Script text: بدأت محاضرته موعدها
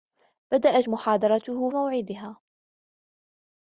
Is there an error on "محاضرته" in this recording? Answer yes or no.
no